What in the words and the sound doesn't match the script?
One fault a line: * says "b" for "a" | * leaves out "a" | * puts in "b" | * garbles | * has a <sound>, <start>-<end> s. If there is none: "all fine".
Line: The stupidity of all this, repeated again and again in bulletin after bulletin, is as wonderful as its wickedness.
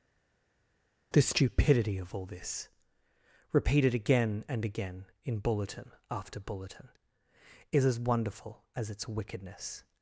all fine